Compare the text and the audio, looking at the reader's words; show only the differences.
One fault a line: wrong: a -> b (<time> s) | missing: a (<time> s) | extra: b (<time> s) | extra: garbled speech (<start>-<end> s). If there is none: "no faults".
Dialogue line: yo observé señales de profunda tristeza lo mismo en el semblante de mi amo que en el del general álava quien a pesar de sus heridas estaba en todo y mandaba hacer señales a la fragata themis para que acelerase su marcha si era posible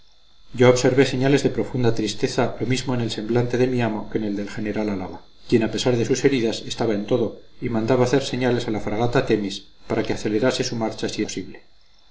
missing: era (11.2 s)